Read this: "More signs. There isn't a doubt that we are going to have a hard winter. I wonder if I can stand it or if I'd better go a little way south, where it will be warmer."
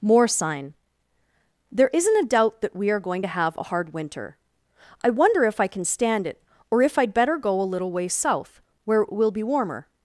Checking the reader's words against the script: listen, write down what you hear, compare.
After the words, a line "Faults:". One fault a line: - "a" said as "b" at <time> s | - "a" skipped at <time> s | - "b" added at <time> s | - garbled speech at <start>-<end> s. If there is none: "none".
"More sign. There isn't a doubt that we are going to have a hard winter. I wonder if I can stand it or if I'd better go a little way south, where it will be warmer."
Faults:
- "signs" said as "sign" at 0.3 s